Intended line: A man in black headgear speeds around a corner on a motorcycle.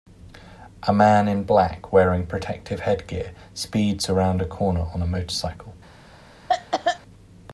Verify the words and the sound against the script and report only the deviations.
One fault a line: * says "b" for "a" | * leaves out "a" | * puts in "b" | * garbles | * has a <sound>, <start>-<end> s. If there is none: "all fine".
* puts in "wearing protective"
* has a cough, 6.5-7.0 s